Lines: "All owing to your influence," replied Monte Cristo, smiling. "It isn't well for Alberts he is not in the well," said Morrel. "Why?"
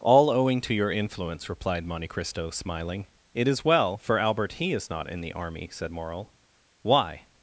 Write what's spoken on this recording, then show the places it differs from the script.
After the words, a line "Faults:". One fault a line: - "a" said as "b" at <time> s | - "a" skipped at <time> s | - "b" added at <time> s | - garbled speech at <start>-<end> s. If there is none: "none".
"All owing to your influence," replied Monte Cristo, smiling. "It is well for Albert he is not in the army," said Morrel. "Why?"
Faults:
- "isn't" said as "is" at 3.5 s
- "Alberts" said as "Albert" at 4.2 s
- "well" said as "army" at 5.3 s